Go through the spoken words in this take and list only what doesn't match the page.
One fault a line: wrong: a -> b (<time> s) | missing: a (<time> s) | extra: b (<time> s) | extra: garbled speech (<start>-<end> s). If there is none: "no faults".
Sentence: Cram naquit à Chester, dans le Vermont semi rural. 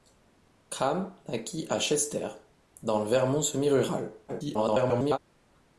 extra: garbled speech (4.3-5.2 s)